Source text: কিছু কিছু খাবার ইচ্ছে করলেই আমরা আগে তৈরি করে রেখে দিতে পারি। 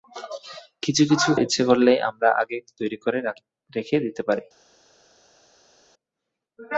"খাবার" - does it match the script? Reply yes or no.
no